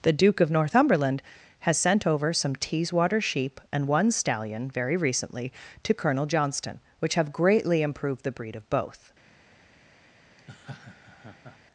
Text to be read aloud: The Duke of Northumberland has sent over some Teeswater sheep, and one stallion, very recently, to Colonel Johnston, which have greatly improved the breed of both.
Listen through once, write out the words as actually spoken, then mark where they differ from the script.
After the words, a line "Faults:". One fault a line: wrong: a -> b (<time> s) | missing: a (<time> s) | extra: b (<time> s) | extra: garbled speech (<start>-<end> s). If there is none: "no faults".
The Duke of Northumberland has sent over some Teeswater sheep, and one stallion, very recently, to Colonel Johnston, which have greatly improved the breed of both.
Faults:
no faults